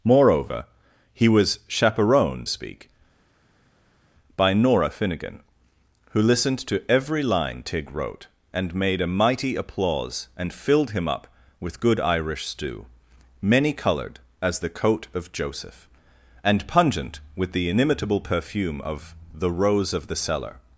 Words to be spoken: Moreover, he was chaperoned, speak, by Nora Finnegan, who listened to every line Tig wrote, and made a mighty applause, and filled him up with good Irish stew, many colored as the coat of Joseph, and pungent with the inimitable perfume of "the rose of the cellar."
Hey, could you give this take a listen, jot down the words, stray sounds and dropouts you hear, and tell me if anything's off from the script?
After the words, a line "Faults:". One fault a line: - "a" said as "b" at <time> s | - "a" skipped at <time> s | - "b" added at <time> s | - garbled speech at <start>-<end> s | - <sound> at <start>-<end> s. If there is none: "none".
Moreover, he was chaperoned, speak, by Nora Finnegan, who listened to every line Tig wrote, and made a mighty applause, and filled him up with good Irish stew, many colored as the coat of Joseph, and pungent with the inimitable perfume of "the rose of the cellar."
Faults:
none